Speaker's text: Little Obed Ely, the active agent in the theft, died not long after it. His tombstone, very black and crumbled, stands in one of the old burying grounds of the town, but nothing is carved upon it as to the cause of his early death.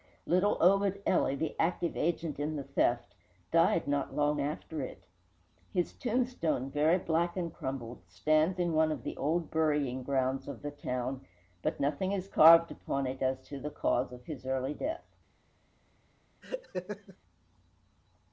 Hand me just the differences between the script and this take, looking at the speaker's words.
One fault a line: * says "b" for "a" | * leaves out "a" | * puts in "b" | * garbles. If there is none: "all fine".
all fine